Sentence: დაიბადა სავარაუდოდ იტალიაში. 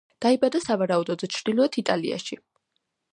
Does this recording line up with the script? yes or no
no